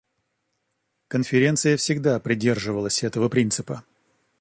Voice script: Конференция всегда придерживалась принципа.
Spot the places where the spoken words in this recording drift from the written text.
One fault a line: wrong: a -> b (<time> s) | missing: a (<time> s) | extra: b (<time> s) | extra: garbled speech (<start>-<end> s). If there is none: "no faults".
extra: этого (3.0 s)